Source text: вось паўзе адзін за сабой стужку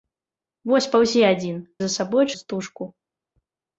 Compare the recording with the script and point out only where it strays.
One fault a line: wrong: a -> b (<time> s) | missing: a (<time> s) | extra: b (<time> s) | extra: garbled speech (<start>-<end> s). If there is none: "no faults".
no faults